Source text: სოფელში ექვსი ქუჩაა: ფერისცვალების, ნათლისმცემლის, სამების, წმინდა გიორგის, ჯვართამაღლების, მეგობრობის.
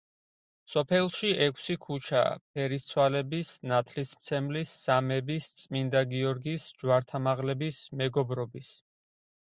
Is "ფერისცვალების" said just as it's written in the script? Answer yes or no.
yes